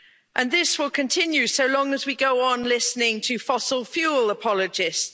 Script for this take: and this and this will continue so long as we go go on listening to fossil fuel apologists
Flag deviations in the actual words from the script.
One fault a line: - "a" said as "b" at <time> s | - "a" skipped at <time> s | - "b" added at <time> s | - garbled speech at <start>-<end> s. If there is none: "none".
- "and this" skipped at 0.8 s
- "go" skipped at 2.5 s